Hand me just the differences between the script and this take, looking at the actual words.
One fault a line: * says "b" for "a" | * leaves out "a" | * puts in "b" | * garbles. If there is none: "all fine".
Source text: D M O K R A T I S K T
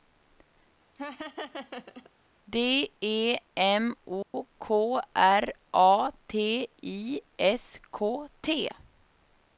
* puts in "E"